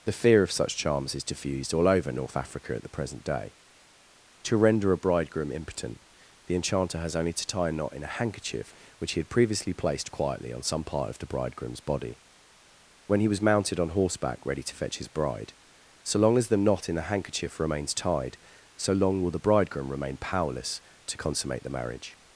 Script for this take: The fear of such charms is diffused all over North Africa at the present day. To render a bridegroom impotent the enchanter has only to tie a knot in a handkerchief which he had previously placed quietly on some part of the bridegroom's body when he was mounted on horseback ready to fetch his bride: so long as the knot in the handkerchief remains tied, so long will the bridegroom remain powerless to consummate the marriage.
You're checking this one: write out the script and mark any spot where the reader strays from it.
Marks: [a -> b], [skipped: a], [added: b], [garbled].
The fear of such charms is diffused all over North Africa at the present day. To render a bridegroom impotent the enchanter has only to tie a knot in a handkerchief which he had previously placed quietly on some part of the bridegroom's body when he was mounted on horseback ready to fetch his bride: so long as the knot in the handkerchief remains tied, so long will the bridegroom remain powerless to consummate the marriage.